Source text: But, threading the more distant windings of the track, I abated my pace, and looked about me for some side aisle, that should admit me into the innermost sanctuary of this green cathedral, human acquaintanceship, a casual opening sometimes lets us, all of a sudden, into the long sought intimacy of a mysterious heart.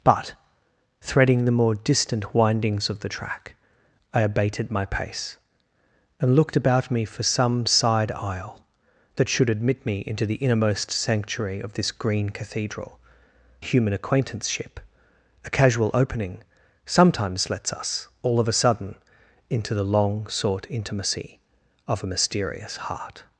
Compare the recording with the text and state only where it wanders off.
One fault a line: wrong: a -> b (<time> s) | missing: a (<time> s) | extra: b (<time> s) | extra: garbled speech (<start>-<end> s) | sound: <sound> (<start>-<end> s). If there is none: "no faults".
no faults